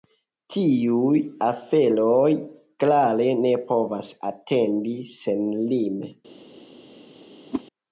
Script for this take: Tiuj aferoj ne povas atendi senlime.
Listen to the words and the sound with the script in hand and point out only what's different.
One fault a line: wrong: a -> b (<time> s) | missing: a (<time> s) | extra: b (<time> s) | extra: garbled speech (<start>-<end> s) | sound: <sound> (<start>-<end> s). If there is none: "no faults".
extra: klare (2.9 s)
sound: whoosh (7.5-7.6 s)